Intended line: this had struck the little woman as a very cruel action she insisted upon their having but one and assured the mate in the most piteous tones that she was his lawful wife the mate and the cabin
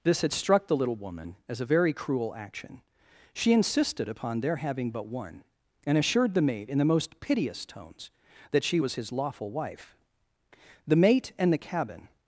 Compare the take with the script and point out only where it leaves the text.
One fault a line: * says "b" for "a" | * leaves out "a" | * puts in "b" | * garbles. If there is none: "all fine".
all fine